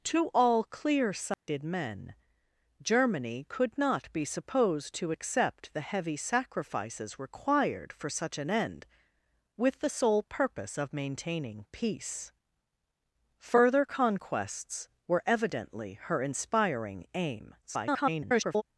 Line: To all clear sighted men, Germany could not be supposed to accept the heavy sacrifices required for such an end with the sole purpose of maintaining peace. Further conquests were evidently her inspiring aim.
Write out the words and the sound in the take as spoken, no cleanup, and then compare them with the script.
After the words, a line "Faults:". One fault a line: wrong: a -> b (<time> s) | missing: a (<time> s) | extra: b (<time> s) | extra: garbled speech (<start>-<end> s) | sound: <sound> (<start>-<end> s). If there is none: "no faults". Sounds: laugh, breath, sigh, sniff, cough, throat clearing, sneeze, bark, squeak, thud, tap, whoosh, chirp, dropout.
To all clear sighted men, Germany could not be supposed to accept the heavy sacrifices required for such an end with the sole purpose of maintaining peace. Further conquests were evidently her inspiring aim. [garbled]
Faults:
sound: dropout (1.3-1.5 s)
extra: garbled speech (17.6-18.6 s)